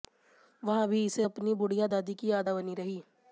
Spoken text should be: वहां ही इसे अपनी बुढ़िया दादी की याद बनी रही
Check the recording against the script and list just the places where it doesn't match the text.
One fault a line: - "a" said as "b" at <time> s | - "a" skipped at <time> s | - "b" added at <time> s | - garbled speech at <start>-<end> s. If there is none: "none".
- "ही" said as "भी" at 0.9 s